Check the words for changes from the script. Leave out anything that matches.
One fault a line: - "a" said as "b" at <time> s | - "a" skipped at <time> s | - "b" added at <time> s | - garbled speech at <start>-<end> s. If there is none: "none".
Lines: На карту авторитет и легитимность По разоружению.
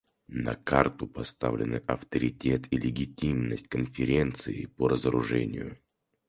- "поставлены" added at 1.1 s
- "Конференции" added at 3.7 s